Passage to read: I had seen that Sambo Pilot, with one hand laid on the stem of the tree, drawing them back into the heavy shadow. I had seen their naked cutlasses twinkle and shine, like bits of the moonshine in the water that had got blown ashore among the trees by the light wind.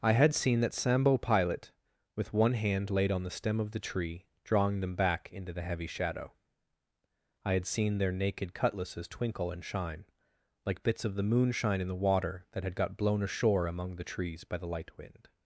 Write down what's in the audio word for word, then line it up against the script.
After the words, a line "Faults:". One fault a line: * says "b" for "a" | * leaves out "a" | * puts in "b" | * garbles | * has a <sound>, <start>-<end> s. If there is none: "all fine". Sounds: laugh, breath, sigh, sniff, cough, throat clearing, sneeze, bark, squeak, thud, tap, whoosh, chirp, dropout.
I had seen that Sambo Pilot, with one hand laid on the stem of the tree, drawing them back into the heavy shadow. I had seen their naked cutlasses twinkle and shine, like bits of the moonshine in the water that had got blown ashore among the trees by the light wind.
Faults:
all fine